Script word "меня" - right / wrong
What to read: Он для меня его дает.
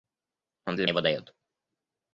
wrong